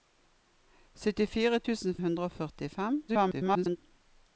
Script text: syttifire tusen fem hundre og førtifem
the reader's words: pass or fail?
fail